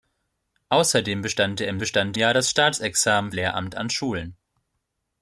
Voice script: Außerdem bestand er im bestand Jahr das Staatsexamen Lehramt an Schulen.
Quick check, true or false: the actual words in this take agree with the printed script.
true